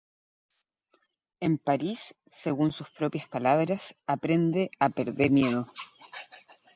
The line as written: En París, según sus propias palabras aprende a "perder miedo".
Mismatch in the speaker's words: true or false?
false